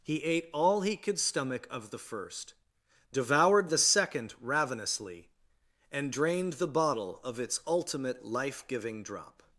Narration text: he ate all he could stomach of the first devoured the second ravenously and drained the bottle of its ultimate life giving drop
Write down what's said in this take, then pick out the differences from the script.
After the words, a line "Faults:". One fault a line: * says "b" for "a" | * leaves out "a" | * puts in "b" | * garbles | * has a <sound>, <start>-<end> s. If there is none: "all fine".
he ate all he could stomach of the first devoured the second ravenously and drained the bottle of its ultimate life giving drop
Faults:
all fine